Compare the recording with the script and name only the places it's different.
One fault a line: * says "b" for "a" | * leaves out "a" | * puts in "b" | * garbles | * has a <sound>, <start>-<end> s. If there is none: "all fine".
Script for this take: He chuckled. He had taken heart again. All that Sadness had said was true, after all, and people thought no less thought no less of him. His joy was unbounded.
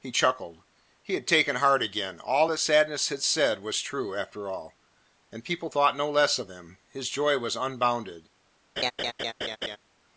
* leaves out "thought no less"
* has a laugh, 8.8-9.8 s